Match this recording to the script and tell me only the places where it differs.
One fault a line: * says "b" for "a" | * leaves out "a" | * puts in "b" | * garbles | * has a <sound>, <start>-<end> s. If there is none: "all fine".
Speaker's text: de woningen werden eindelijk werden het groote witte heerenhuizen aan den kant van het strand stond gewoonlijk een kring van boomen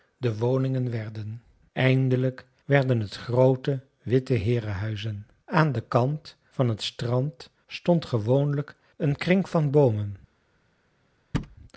* has a thud, 11.3-11.6 s